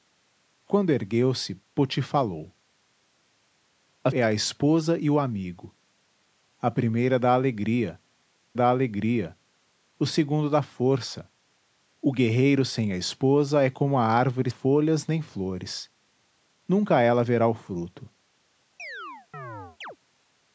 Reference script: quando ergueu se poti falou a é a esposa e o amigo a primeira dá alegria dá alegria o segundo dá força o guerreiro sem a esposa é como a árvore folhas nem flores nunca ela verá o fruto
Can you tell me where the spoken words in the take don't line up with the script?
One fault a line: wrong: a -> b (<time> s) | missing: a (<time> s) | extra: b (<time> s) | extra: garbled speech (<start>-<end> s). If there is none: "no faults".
no faults